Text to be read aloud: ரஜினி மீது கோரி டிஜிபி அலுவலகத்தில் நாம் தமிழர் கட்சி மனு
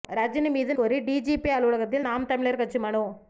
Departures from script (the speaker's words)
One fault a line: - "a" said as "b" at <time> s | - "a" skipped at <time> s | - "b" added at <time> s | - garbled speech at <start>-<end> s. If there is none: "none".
none